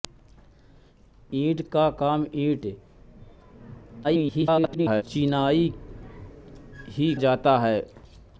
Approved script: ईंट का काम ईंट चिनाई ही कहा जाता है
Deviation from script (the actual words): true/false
true